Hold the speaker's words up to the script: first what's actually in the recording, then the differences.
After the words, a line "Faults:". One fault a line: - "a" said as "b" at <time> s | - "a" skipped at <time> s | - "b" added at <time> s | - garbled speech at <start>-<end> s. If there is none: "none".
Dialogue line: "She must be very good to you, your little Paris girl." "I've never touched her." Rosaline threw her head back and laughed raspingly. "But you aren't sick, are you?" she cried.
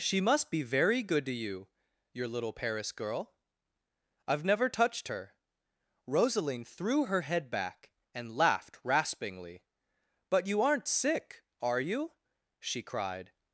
"She must be very good to you, your little Paris girl." "I've never touched her." Rosaline threw her head back and laughed raspingly. "But you aren't sick, are you?" she cried.
Faults:
none